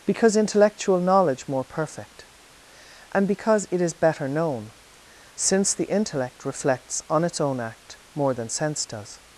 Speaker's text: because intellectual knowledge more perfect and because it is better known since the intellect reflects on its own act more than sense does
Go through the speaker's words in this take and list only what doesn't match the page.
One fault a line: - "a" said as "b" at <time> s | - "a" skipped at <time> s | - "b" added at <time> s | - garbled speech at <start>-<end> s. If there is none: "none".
none